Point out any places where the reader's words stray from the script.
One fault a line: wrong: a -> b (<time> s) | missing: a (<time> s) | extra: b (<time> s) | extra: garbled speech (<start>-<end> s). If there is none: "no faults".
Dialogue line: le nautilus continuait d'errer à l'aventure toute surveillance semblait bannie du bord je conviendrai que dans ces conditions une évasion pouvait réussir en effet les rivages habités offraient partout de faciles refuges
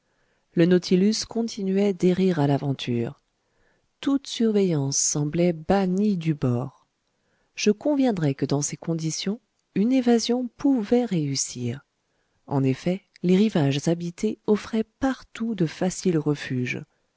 no faults